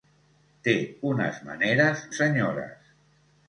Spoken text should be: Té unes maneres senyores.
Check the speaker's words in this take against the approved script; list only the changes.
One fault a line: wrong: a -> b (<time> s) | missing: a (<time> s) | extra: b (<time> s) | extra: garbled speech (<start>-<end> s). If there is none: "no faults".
no faults